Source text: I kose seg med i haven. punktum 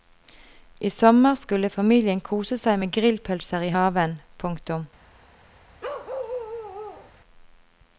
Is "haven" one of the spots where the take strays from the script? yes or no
no